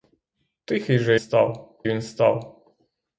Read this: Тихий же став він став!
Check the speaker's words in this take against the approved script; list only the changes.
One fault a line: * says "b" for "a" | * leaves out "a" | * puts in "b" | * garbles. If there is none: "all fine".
all fine